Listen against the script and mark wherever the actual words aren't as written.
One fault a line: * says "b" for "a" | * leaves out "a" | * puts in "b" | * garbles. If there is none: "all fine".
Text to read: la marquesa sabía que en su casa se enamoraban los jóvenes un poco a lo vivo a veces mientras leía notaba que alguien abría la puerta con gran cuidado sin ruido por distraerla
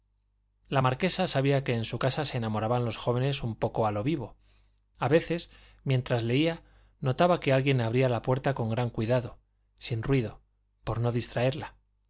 * puts in "no"